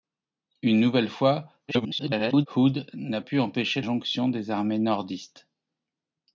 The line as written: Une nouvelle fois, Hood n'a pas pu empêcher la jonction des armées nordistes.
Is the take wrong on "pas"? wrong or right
wrong